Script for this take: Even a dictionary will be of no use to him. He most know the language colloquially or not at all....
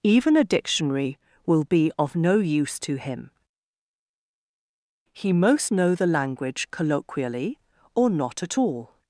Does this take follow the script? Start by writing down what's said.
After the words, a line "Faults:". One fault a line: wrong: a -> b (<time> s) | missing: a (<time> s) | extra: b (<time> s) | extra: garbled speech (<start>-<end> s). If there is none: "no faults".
Even a dictionary will be of no use to him. He most know the language colloquially or not at all....
Faults:
no faults